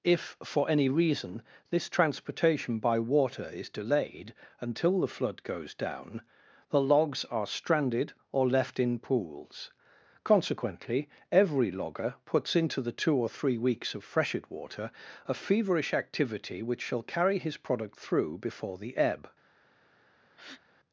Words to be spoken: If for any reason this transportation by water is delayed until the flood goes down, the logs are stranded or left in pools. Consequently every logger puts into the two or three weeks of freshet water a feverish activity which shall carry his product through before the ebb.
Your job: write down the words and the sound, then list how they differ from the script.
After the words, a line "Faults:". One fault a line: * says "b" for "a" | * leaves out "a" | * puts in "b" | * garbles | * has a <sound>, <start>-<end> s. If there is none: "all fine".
If for any reason this transportation by water is delayed until the flood goes down, the logs are stranded or left in pools. Consequently every logger puts into the two or three weeks of freshet water a feverish activity which shall carry his product through before the ebb.
Faults:
* has a breath, 20.3-20.6 s